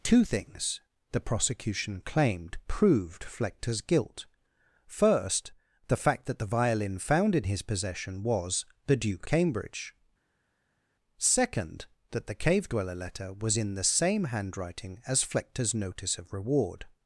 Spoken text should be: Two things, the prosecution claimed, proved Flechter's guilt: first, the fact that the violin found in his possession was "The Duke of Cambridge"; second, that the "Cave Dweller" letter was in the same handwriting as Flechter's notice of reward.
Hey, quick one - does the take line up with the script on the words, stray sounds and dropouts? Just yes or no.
no